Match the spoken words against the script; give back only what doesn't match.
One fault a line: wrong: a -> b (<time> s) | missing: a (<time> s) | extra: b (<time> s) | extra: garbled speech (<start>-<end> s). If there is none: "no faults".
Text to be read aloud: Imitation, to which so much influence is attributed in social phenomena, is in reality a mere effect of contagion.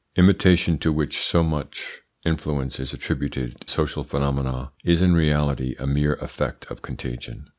missing: in (3.7 s)